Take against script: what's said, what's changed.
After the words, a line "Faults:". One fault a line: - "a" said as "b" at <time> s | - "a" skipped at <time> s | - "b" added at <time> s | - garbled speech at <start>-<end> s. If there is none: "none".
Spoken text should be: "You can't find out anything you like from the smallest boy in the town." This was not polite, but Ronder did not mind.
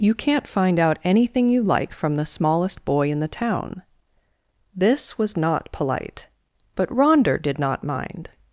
"You can't find out anything you like from the smallest boy in the town." This was not polite, but Ronder did not mind.
Faults:
none